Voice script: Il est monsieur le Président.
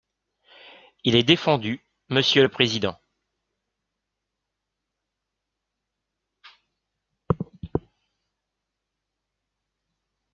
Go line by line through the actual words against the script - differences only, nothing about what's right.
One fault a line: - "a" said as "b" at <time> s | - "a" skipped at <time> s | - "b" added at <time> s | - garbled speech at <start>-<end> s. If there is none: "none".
- "défendu" added at 1.2 s